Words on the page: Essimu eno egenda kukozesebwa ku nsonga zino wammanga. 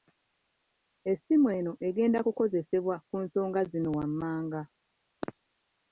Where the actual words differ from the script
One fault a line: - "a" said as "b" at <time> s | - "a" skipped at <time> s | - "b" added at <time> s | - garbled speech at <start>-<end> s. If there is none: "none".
none